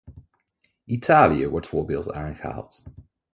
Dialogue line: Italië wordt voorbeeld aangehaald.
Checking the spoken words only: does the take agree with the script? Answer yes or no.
yes